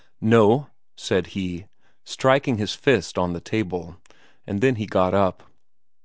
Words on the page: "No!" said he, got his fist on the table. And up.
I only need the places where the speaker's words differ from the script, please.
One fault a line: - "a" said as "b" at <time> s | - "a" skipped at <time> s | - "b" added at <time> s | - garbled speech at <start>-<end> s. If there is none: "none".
- "got" said as "striking" at 2.0 s
- "then he got" added at 4.6 s